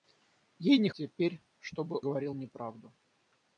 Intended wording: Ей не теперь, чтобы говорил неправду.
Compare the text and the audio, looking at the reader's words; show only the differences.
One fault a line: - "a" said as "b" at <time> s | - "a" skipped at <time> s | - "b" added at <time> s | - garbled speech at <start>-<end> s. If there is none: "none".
none